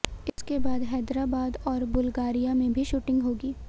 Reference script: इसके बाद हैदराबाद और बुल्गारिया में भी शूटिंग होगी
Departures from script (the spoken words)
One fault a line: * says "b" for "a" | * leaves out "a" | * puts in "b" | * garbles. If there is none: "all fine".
all fine